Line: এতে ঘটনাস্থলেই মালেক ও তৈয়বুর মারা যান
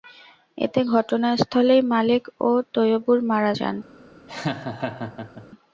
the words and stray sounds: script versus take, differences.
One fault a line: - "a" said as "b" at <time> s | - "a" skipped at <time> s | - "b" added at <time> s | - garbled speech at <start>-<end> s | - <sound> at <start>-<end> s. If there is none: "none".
- laugh at 4.3-5.5 s